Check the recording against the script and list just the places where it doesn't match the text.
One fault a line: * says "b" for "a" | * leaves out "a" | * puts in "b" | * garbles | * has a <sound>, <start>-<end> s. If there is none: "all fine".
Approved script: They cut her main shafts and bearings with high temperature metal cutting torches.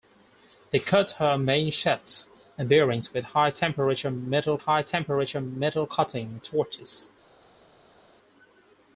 * puts in "high temperature metal"